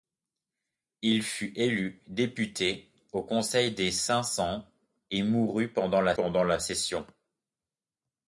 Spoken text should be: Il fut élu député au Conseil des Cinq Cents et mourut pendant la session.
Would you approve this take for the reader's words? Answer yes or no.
no